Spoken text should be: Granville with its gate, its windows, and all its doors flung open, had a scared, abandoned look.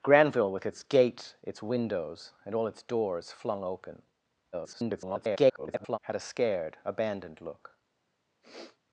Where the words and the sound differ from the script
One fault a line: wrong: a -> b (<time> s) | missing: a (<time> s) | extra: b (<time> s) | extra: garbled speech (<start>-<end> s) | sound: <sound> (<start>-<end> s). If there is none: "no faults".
extra: garbled speech (4.5-6.0 s)
sound: sniff (8.4-8.8 s)